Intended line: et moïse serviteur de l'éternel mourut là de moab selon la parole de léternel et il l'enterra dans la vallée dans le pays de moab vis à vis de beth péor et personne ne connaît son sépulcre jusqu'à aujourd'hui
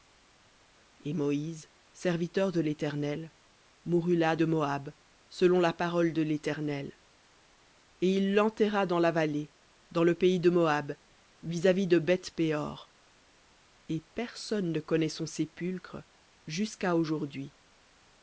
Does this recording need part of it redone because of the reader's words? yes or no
no